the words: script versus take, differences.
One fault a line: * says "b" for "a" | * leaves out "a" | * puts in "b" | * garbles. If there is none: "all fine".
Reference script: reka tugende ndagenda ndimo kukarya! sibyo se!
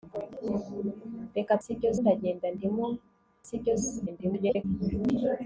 * says "sibyo" for "tugende"
* leaves out "kukarya"
* garbles